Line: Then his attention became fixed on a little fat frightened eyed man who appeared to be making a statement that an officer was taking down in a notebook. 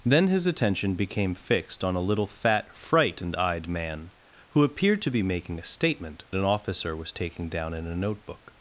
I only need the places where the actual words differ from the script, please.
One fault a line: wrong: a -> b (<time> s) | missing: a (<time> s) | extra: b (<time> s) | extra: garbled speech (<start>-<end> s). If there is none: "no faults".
missing: that (6.2 s)